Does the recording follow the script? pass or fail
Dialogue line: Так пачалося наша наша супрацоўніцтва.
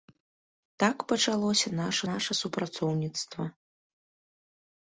pass